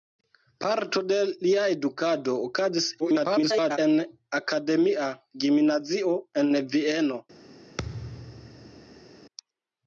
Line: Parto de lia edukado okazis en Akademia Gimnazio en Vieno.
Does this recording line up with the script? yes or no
no